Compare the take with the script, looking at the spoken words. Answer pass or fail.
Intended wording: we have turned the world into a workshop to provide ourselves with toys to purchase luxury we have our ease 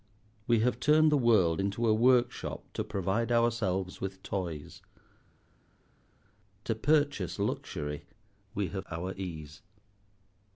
pass